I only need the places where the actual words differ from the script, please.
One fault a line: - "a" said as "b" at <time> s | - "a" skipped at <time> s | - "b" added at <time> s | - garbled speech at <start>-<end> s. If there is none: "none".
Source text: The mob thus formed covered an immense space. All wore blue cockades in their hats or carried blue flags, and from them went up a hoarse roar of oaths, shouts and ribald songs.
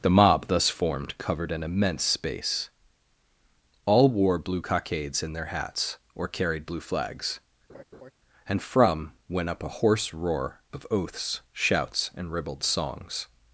- "them" skipped at 9.1 s